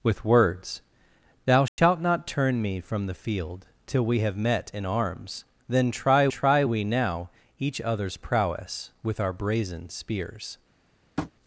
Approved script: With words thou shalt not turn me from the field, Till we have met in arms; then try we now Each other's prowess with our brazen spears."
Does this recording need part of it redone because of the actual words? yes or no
yes